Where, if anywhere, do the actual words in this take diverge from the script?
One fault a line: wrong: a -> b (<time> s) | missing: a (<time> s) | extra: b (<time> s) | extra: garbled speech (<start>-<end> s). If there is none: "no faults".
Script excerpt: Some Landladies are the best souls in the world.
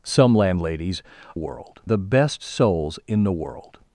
wrong: are -> world (1.3 s)